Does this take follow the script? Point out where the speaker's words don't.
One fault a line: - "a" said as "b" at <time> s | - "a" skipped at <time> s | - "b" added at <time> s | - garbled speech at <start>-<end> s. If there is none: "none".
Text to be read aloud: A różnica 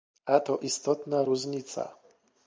- "to istotna" added at 0.4 s